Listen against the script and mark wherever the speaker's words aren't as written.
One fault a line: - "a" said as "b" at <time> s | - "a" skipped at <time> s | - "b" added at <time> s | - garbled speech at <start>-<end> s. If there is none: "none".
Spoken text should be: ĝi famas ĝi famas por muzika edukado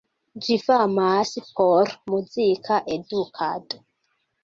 - "ĝi famas" skipped at 1.3 s